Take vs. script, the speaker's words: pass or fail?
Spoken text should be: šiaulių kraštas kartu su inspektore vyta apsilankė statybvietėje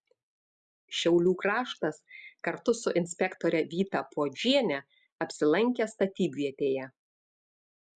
fail